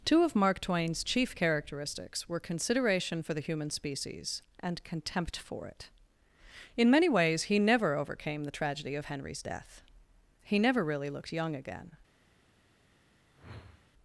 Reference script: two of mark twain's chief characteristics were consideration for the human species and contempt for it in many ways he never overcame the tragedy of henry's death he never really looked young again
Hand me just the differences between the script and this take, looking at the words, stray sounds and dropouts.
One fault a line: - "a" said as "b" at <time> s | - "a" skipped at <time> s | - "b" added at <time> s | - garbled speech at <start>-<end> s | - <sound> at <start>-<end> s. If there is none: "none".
- whoosh at 13.3-13.9 s